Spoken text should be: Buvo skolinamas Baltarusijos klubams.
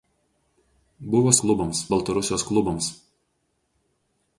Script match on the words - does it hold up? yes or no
no